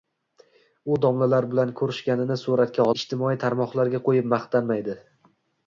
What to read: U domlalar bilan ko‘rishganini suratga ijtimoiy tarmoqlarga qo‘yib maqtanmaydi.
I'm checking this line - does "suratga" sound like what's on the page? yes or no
yes